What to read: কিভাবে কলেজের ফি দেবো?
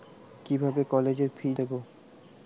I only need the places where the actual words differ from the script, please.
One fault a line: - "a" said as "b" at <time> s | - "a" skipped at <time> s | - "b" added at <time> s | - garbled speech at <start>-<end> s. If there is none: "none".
none